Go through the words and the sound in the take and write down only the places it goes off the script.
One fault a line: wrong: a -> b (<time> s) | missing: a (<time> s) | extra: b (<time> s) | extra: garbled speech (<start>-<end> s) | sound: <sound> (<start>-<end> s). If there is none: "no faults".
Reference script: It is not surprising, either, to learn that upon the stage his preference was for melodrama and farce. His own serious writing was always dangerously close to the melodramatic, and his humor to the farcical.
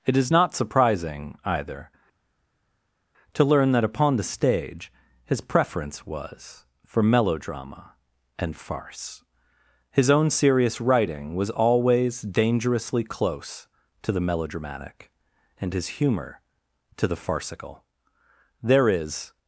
extra: There is (18.6 s)